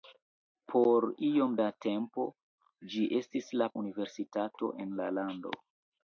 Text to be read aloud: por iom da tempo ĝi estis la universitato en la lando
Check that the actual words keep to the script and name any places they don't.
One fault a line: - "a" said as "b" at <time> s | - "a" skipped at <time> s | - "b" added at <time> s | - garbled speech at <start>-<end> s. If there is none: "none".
none